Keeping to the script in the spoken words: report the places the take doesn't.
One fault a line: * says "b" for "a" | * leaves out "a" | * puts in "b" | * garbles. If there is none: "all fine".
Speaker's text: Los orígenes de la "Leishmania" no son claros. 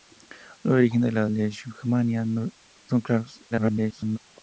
* garbles